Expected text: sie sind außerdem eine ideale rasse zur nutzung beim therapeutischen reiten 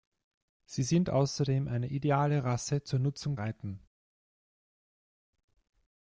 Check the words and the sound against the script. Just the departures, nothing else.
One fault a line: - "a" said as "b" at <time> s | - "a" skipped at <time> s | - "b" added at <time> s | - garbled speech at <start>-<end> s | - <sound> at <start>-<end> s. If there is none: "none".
- "beim therapeutischen" skipped at 3.4 s